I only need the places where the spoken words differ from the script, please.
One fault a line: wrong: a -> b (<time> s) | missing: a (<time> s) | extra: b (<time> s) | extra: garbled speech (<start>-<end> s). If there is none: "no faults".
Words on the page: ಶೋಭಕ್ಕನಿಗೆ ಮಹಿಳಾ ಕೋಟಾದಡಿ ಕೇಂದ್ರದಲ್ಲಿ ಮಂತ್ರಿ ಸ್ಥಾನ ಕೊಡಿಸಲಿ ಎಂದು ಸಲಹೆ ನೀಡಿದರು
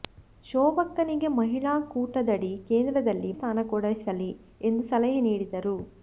missing: ಮಂತ್ರಿ (3.3 s)